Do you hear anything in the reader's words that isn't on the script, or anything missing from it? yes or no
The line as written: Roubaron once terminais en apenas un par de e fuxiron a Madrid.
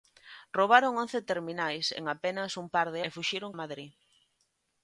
no